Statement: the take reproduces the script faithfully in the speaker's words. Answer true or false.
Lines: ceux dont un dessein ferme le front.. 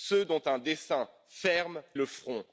true